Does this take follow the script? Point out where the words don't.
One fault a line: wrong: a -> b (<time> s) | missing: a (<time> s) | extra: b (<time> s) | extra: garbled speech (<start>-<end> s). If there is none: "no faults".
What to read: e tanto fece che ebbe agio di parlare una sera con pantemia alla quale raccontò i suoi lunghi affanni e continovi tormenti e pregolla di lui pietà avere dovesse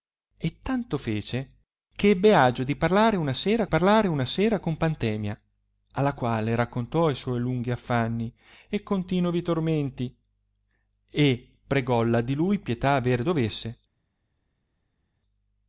extra: parlare una sera (3.7 s)